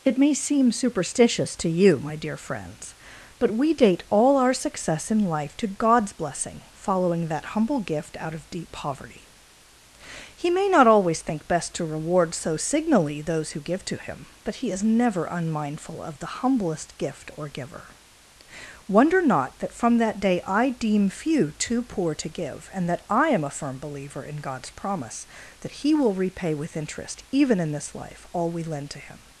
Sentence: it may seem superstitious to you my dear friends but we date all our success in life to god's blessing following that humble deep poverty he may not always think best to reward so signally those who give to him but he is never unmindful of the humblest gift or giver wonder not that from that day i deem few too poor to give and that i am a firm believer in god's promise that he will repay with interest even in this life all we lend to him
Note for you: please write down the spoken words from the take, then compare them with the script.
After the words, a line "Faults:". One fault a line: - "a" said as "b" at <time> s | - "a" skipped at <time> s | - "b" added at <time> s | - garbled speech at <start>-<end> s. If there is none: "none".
it may seem superstitious to you my dear friends but we date all our success in life to god's blessing following that humble gift out of deep poverty he may not always think best to reward so signally those who give to him but he is never unmindful of the humblest gift or giver wonder not that from that day i deem few too poor to give and that i am a firm believer in god's promise that he will repay with interest even in this life all we lend to him
Faults:
- "gift out of" added at 7.8 s